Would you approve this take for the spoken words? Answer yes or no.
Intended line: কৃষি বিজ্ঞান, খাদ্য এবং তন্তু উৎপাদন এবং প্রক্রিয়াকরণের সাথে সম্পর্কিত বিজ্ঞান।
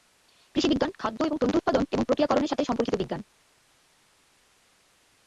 yes